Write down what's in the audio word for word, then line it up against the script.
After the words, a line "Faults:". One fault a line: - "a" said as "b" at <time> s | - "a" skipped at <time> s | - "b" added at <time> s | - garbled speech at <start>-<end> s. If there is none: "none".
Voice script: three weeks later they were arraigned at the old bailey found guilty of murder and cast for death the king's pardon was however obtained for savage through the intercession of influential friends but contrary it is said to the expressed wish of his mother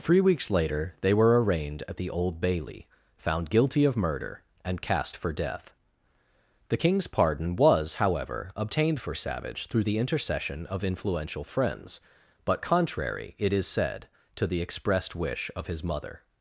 three weeks later they were arraigned at the old bailey found guilty of murder and cast for death the king's pardon was however obtained for savage through the intercession of influential friends but contrary it is said to the expressed wish of his mother
Faults:
none